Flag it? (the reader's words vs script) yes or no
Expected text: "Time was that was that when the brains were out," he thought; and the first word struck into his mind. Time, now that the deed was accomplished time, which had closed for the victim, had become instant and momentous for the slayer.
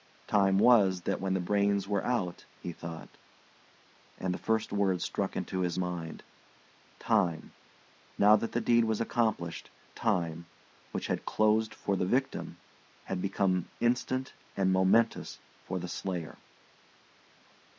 yes